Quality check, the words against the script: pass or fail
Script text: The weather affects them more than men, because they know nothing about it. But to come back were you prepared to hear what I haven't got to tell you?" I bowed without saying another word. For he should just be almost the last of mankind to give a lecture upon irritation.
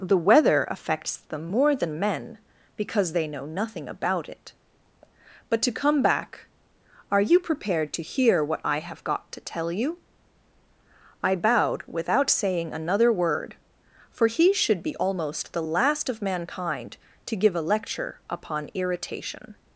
fail